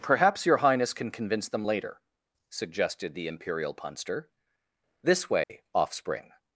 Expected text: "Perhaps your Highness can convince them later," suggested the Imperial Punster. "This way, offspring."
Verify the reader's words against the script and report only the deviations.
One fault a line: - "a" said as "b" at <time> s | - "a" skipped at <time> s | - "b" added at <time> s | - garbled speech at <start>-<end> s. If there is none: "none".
none